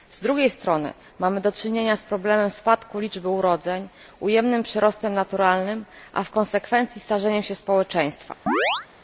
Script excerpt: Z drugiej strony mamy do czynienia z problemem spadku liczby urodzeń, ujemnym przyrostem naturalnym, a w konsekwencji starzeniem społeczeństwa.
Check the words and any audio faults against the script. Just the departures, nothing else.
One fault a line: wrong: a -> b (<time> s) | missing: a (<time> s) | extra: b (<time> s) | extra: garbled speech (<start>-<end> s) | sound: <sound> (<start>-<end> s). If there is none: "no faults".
extra: się (7.4 s)
sound: chirp (8.5-8.9 s)